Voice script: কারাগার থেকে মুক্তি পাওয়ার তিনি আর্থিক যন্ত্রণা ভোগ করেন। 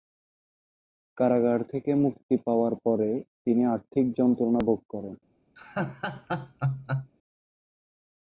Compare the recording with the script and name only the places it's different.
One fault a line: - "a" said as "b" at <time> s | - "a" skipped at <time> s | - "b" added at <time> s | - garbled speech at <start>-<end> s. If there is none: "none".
- "পরে" added at 2.8 s